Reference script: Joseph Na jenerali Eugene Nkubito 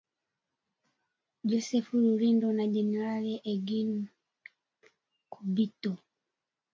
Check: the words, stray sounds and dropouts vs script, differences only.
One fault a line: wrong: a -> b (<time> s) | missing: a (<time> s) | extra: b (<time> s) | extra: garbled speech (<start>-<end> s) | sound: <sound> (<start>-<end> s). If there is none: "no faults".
extra: Rurindo (2.0 s)